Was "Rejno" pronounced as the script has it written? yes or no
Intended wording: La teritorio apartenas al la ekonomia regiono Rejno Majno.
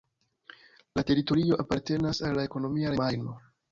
no